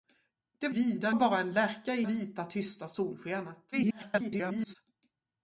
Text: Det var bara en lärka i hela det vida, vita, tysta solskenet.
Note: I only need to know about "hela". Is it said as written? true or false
false